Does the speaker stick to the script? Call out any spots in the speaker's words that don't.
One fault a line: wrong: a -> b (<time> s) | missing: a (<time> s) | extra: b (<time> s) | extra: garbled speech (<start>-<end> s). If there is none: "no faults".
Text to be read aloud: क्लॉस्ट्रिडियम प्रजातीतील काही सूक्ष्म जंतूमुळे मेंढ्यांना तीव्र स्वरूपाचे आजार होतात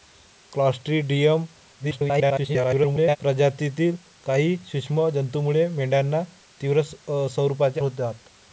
extra: garbled speech (1.8-3.2 s)
missing: आजार (7.8 s)